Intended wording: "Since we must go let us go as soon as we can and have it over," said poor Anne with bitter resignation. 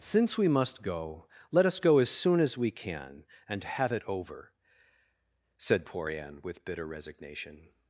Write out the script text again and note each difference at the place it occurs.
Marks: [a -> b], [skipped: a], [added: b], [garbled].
"Since we must go let us go as soon as we can and have it over," said poor Anne with bitter resignation.